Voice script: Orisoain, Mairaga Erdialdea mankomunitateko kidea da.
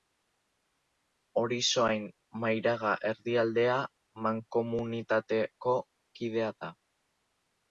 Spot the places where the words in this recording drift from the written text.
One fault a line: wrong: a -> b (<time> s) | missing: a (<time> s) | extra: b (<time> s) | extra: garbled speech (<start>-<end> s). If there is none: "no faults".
no faults